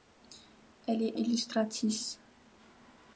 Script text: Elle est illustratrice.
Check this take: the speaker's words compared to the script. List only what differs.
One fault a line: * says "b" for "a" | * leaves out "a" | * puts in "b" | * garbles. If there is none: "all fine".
all fine